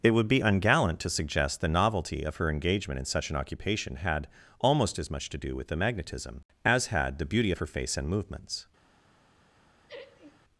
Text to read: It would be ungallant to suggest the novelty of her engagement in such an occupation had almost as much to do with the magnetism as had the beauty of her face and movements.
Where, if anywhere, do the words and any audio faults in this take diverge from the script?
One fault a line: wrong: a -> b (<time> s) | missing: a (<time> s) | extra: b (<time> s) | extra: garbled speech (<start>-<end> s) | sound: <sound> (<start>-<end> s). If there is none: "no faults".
sound: laugh (9.9-10.4 s)